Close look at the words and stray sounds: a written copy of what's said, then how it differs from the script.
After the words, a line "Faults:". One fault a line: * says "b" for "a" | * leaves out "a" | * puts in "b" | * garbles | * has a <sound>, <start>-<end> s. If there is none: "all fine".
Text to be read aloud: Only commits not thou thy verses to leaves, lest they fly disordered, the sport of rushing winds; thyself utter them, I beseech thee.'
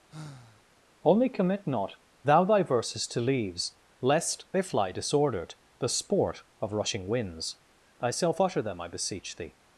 Only commit not thou thy verses to leaves, lest they fly disordered, the sport of rushing winds; thyself utter them, I beseech thee.'
Faults:
* has a sigh, 0.1-0.7 s
* says "commit" for "commits"